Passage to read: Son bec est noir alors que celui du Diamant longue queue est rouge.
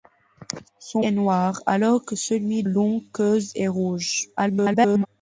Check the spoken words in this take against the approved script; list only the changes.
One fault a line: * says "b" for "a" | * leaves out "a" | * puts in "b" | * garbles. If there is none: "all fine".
* leaves out "bec"
* leaves out "du Diamant"
* garbles